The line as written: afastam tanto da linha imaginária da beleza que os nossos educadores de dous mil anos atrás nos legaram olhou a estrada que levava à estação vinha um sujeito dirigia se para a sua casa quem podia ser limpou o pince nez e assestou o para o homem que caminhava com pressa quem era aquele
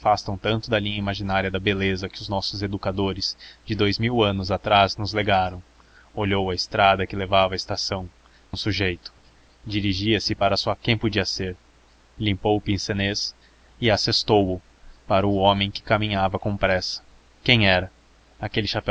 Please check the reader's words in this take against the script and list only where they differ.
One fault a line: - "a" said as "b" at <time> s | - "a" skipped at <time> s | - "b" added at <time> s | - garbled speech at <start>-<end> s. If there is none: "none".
- "vinha" skipped at 8.1 s
- "casa" skipped at 10.7 s